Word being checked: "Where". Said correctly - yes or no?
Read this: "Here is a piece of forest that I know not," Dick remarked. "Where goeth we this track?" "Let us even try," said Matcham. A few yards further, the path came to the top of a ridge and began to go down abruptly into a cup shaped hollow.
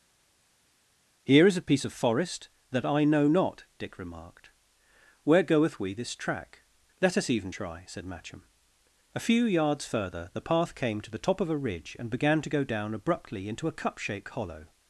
yes